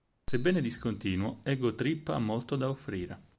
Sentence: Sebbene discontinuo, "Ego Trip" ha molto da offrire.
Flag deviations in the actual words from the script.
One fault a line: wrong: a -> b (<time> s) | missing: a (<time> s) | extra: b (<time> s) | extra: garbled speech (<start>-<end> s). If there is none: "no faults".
no faults